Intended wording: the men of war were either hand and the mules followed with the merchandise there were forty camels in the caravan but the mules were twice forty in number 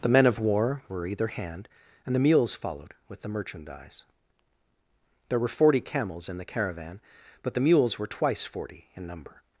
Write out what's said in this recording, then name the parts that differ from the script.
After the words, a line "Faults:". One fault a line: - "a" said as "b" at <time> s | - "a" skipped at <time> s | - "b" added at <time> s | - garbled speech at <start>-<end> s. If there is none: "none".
the men of war were either hand and the mules followed with the merchandise there were forty camels in the caravan but the mules were twice forty in number
Faults:
none